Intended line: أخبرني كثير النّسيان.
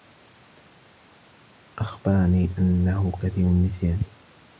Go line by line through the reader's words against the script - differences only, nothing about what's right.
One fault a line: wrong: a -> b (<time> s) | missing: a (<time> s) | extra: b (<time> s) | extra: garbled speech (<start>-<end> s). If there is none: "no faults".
extra: أنّه (2.6 s)